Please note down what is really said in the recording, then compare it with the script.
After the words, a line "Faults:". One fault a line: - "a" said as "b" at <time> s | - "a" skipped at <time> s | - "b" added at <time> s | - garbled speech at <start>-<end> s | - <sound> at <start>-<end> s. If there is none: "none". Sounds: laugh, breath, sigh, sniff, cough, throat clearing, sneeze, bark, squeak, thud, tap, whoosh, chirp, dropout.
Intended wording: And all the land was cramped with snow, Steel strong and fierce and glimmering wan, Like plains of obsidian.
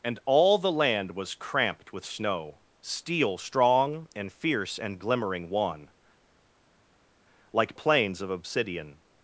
And all the land was cramped with snow, Steel strong and fierce and glimmering wan, Like plains of obsidian.
Faults:
none